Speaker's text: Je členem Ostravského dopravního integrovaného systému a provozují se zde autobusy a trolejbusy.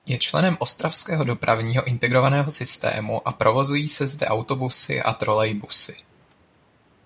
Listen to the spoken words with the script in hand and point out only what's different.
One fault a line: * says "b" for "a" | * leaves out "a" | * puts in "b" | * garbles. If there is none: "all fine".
all fine